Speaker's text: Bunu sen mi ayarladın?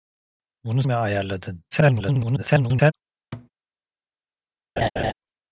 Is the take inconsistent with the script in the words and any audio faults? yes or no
yes